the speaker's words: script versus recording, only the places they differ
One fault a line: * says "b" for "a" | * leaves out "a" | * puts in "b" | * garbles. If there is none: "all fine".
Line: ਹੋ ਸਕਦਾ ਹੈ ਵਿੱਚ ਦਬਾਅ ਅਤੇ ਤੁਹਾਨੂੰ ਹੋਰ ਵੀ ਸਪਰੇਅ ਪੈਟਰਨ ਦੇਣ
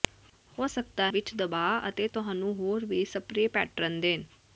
* leaves out "ਹੈ"